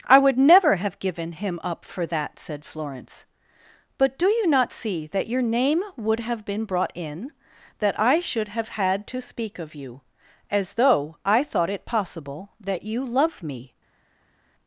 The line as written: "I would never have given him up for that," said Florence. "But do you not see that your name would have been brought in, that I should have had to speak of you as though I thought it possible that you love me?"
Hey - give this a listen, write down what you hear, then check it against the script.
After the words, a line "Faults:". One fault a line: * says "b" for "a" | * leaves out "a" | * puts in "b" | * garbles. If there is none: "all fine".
"I would never have given him up for that," said Florence. "But do you not see that your name would have been brought in, that I should have had to speak of you as though I thought it possible that you love me?"
Faults:
all fine